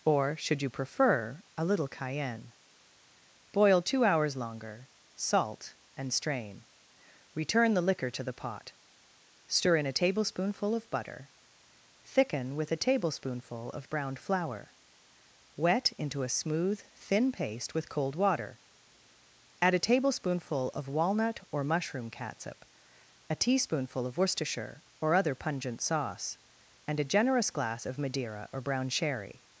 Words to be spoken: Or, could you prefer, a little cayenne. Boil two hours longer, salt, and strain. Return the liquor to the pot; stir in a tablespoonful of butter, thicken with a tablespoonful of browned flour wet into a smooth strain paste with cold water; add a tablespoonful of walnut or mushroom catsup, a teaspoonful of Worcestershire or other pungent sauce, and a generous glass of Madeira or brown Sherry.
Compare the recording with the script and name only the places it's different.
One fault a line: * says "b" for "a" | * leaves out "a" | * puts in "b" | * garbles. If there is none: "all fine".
* says "should" for "could"
* says "thin" for "strain"